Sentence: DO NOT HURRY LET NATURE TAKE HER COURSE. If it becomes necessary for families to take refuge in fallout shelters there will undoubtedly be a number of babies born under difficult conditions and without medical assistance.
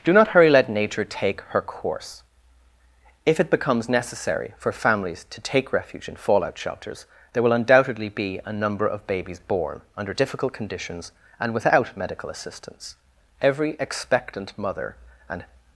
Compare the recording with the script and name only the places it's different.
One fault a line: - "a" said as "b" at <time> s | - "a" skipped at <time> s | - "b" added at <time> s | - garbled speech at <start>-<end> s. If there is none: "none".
- "Every expectant mother and" added at 13.4 s